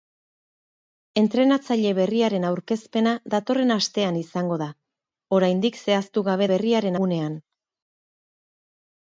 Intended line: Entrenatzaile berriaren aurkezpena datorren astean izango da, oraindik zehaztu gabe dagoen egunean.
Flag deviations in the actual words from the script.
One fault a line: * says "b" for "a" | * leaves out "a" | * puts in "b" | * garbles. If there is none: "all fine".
* says "berriaren" for "dagoen"